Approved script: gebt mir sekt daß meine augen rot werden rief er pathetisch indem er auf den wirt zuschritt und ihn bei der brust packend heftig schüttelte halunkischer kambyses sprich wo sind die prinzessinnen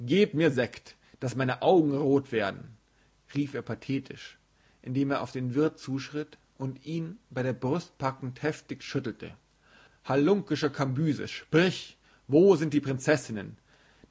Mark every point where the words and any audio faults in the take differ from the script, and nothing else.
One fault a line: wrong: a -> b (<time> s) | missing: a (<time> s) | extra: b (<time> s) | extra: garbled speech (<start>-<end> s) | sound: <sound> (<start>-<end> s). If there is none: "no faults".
no faults